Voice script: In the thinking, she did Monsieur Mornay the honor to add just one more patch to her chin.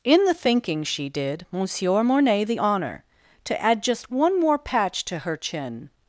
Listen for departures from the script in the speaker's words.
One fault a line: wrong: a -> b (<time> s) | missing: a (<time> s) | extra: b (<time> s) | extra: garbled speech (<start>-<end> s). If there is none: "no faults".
no faults